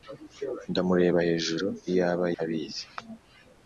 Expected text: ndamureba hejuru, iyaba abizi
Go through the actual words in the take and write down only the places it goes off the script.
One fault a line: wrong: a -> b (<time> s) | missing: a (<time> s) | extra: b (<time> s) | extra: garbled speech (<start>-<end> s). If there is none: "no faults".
no faults